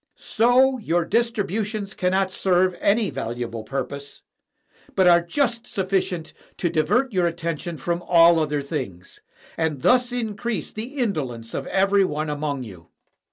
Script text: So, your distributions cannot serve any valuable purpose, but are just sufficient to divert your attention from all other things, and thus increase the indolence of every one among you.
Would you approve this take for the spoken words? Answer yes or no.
yes